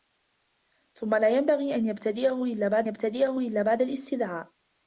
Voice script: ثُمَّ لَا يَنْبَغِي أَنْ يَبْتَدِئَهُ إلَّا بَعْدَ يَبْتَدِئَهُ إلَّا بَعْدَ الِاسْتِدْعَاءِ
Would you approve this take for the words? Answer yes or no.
yes